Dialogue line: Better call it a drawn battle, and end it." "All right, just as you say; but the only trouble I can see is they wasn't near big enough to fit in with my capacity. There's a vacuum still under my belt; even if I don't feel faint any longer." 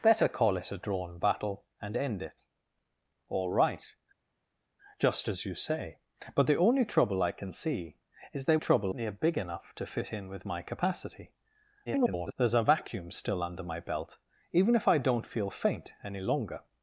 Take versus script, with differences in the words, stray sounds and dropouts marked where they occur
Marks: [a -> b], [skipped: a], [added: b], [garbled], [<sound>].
Better call it a drawn battle, and end it." "All right, just as you say; but the only trouble I can see is they [wasn't -> trouble] near big enough to fit in with my capacity. [garbled] There's a vacuum still under my belt; even if I don't feel faint any longer."